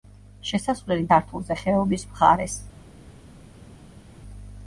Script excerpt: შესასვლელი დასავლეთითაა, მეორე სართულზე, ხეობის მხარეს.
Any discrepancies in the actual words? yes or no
yes